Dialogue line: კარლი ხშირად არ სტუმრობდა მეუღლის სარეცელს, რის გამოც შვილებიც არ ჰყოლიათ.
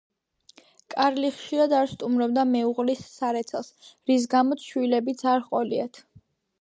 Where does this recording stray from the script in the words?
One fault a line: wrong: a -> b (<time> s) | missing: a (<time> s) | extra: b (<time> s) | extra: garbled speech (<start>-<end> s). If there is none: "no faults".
no faults